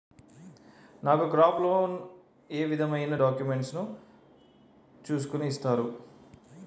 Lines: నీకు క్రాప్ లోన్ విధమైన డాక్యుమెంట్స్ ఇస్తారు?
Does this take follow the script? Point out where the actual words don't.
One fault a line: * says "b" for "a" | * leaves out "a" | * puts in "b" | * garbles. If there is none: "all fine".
* says "నాకు" for "నీకు"
* puts in "ఏ"
* puts in "ను చూస్కుని"